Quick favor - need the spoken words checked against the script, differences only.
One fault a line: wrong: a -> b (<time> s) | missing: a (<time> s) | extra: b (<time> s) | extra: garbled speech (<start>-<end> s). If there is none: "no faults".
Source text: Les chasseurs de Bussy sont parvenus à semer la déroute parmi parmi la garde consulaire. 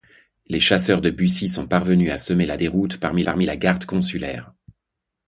no faults